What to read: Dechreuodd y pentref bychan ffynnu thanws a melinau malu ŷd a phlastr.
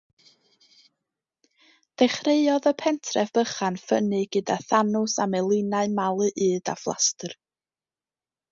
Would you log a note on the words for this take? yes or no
yes